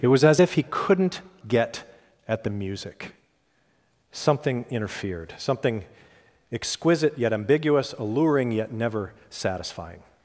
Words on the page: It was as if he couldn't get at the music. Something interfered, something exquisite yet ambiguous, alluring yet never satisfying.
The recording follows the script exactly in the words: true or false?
true